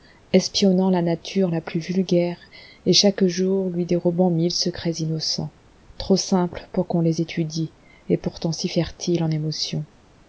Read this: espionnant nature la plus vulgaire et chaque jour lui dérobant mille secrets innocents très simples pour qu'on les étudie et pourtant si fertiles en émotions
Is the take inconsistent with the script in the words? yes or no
yes